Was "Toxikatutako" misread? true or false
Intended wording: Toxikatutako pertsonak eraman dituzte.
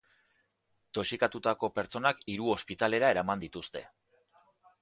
false